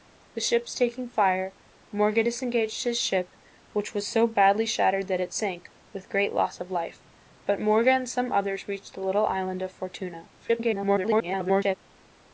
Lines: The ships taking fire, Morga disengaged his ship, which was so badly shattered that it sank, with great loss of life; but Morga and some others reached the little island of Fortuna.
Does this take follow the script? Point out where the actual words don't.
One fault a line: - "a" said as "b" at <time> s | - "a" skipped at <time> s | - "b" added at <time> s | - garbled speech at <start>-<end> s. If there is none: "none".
- garbled speech at 10.4-11.8 s